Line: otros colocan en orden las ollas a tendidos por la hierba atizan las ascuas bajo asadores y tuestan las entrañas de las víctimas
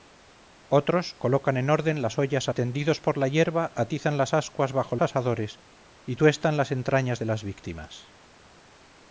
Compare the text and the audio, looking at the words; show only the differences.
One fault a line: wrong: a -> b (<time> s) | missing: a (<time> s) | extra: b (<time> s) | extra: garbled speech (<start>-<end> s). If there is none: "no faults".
no faults